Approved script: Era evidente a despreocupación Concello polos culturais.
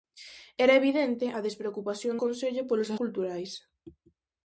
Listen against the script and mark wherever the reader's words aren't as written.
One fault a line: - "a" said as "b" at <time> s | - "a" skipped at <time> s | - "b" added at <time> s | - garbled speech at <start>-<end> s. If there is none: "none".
none